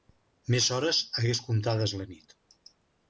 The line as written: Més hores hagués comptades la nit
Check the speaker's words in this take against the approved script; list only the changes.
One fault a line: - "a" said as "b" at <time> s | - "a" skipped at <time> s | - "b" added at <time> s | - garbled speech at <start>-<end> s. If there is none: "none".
none